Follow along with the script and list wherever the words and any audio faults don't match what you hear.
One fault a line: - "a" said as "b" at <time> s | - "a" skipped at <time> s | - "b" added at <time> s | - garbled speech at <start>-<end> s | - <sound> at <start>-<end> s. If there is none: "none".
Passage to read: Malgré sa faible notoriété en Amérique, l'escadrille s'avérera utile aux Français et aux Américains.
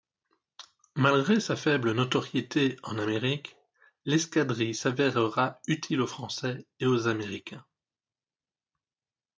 none